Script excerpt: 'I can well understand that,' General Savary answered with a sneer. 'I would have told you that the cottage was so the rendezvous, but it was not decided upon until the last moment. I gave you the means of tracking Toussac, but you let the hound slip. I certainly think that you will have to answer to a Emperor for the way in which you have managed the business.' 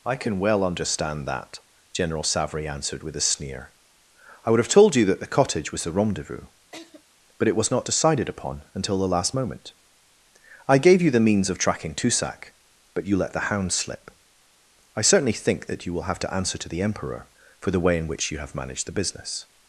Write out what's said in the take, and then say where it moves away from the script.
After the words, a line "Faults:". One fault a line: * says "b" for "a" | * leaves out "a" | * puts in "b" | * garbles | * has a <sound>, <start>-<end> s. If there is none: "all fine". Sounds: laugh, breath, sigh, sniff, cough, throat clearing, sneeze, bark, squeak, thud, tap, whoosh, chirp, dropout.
'I can well understand that,' General Savary answered with a sneer. 'I would have told you that the cottage was the rendezvous, but it was not decided upon until the last moment. I gave you the means of tracking Toussac, but you let the hound slip. I certainly think that you will have to answer to the Emperor for the way in which you have managed the business.'
Faults:
* leaves out "so"
* has a laugh, 6.7-7.0 s
* says "the" for "a"